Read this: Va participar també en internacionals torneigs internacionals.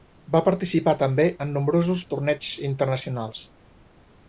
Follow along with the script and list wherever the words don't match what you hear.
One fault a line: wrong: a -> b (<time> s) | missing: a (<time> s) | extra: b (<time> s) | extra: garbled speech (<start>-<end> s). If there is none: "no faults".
wrong: internacionals -> nombrosos (1.6 s)